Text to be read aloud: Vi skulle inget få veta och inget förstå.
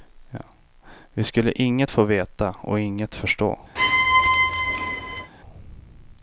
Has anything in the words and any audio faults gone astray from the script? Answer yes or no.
yes